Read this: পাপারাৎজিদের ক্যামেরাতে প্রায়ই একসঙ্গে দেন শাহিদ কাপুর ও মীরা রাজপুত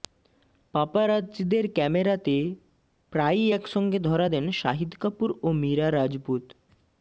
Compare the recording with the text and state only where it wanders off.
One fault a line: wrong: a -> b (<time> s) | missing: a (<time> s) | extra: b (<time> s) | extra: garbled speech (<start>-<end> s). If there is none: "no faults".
extra: ধরা (4.0 s)